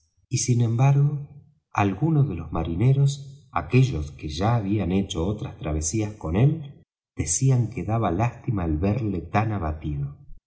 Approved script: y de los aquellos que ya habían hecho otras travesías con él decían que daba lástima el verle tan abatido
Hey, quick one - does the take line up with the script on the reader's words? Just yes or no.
no